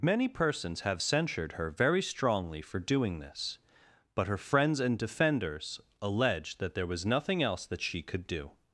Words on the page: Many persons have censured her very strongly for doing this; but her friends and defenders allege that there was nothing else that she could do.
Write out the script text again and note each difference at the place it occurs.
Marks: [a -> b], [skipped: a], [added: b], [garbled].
Many persons have censured her very strongly for doing this; but her friends and defenders allege that there was nothing else that she could do.